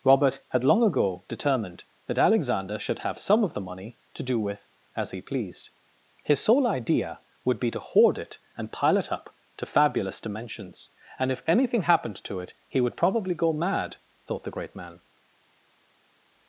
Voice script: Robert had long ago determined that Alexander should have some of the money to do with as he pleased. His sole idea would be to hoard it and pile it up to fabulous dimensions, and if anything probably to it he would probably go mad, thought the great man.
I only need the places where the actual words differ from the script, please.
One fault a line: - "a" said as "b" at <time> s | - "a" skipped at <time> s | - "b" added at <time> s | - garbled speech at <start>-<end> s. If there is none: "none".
- "probably" said as "happened" at 11.8 s